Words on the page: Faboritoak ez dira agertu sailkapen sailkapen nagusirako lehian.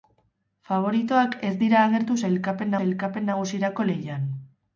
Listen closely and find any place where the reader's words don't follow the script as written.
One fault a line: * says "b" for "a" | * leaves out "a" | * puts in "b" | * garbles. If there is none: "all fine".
all fine